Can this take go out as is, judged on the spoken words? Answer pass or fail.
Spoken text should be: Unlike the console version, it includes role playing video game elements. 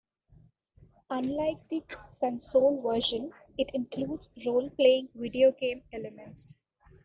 pass